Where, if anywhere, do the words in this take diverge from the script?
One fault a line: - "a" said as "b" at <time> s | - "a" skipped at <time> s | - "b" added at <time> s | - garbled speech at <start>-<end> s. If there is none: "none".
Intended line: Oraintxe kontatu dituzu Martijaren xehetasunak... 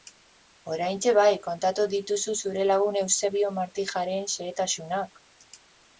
- "bai" added at 1.2 s
- "zure lagun Eusebio" added at 2.5 s